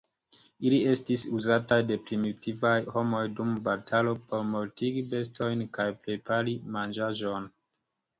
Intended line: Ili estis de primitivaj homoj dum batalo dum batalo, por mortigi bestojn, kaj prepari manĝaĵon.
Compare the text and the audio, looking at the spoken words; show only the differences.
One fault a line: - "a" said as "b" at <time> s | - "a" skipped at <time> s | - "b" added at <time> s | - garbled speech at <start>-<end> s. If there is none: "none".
- "uzataj" added at 1.4 s
- "dum batalo" skipped at 4.1 s